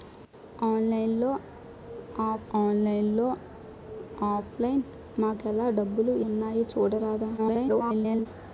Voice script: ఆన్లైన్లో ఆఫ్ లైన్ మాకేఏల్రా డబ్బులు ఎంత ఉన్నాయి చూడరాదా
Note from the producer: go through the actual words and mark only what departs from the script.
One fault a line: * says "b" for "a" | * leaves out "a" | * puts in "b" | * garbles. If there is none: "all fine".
* puts in "ఆన్లైన్లో ఆఫ్"
* leaves out "ఎంత"
* garbles